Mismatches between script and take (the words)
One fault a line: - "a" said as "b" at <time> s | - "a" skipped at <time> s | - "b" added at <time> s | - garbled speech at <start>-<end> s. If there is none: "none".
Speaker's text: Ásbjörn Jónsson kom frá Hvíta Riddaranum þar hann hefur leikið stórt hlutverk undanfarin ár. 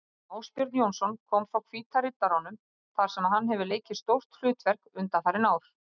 - "sem" added at 3.2 s